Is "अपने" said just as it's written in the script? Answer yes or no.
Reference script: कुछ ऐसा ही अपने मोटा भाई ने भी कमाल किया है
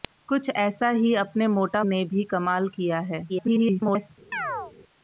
yes